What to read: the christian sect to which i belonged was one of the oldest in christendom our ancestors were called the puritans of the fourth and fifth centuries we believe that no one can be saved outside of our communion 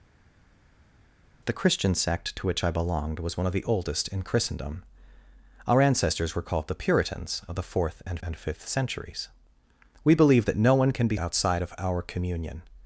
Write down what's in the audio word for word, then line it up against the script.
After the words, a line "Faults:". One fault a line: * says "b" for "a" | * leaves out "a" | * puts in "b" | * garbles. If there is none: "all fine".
the christian sect to which i belonged was one of the oldest in christendom our ancestors were called the puritans of the fourth and and fifth centuries we believe that no one can be outside of our communion
Faults:
* puts in "and"
* leaves out "saved"